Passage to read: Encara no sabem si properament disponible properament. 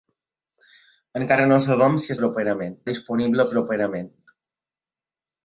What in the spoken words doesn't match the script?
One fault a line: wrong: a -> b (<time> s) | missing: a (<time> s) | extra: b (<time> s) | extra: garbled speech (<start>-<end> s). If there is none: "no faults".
no faults